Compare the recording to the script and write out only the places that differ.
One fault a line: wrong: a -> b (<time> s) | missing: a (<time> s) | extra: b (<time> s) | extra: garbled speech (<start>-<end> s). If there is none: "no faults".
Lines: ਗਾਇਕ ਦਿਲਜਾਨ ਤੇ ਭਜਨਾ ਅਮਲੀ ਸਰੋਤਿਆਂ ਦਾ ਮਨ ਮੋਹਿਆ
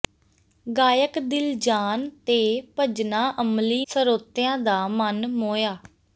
no faults